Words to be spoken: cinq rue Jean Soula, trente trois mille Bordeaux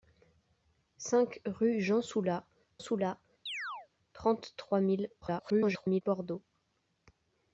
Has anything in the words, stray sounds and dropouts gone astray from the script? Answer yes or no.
yes